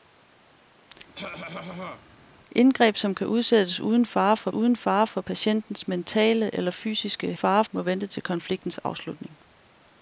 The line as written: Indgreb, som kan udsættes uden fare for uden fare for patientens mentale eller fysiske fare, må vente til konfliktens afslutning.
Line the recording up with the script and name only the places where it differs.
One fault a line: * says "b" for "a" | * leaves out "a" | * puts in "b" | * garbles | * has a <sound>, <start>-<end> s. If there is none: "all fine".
* has a cough, 1.1-2.1 s